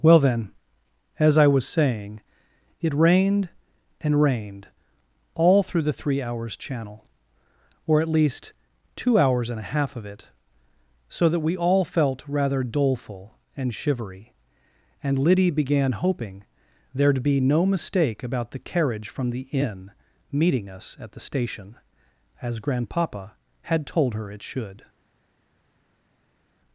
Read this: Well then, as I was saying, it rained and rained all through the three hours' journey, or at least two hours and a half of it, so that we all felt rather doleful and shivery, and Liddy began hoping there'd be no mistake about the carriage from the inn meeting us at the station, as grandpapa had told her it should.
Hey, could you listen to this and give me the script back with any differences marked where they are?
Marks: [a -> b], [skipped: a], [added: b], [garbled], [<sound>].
Well then, as I was saying, it rained and rained all through the three hours' [journey, -> channel] or at least two hours and a half of it, so that we all felt rather doleful and shivery, and Liddy began hoping there'd be no mistake about the carriage from the inn meeting us at the station, as grandpapa had told her it should.